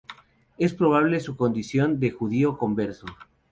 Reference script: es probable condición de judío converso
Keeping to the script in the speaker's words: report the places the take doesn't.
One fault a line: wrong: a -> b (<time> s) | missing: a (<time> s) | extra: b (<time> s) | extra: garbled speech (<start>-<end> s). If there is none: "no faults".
extra: su (1.2 s)